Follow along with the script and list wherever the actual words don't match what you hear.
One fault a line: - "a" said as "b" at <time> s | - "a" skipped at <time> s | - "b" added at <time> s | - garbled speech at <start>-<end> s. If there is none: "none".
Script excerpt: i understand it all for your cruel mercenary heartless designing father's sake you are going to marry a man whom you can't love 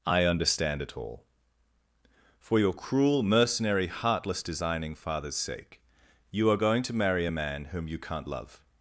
none